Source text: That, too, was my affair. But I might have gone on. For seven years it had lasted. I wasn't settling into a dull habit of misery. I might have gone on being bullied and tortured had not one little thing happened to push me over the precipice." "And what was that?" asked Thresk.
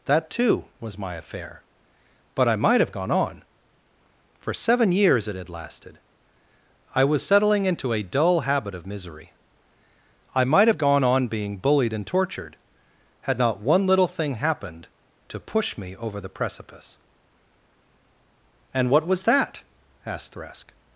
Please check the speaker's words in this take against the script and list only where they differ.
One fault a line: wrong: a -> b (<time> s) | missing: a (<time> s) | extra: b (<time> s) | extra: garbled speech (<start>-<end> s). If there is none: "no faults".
wrong: wasn't -> was (7.0 s)